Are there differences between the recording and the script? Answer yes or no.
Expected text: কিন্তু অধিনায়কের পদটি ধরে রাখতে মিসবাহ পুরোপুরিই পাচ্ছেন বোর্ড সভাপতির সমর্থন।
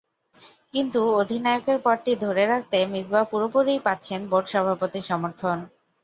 no